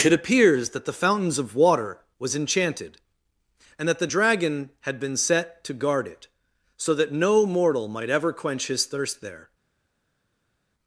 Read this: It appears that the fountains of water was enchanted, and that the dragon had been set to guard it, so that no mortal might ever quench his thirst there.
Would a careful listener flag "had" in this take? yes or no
no